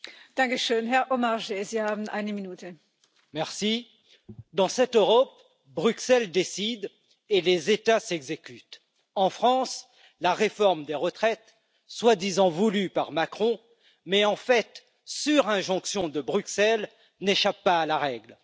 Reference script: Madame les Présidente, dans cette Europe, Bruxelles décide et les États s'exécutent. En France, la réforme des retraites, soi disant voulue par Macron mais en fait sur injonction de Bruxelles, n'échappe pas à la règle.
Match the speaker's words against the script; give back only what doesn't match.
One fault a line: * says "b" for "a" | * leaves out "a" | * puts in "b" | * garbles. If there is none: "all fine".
* says "la" for "les"